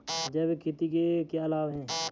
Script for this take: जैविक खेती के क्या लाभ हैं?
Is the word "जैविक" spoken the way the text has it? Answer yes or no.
yes